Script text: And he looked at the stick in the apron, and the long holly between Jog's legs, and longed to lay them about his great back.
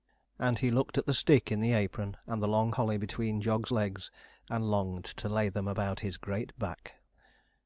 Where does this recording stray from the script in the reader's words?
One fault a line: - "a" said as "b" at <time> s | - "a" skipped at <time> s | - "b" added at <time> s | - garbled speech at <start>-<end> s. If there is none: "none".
none